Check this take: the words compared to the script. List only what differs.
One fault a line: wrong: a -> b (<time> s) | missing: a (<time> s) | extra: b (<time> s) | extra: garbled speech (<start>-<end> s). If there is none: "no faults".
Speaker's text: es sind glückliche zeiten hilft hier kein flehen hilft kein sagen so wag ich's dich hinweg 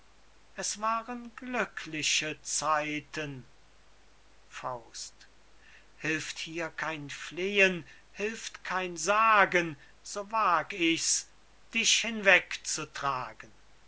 wrong: sind -> waren (0.8 s)